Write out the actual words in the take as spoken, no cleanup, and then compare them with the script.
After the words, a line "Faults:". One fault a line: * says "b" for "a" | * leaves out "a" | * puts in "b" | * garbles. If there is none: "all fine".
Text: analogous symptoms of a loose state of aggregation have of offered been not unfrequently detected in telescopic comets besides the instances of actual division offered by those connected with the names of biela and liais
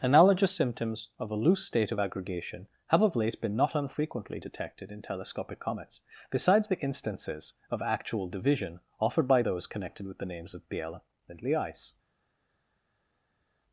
analogous symptoms of a loose state of aggregation have of late been not unfrequently detected in telescopic comets besides the instances of actual division offered by those connected with the names of biela and liais
Faults:
* says "late" for "offered"